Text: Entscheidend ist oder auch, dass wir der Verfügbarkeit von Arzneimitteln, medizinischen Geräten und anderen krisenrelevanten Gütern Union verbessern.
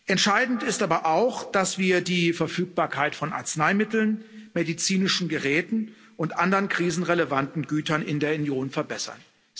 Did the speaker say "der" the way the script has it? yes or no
no